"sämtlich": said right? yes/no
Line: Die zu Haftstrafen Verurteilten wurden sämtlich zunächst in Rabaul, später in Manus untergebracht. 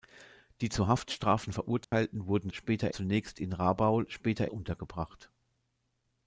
no